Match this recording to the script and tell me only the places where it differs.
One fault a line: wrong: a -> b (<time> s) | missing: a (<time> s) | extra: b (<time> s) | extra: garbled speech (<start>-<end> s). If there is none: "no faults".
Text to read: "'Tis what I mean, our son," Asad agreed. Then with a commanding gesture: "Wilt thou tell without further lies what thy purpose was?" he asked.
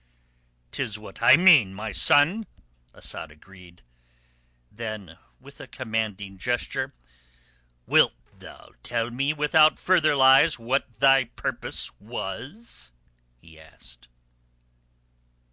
wrong: our -> my (1.7 s)
extra: me (9.1 s)